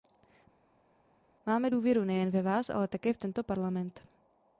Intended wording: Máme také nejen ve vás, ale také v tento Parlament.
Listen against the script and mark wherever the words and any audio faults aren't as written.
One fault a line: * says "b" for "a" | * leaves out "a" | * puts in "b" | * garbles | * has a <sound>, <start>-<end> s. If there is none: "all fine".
* says "důvěru" for "také"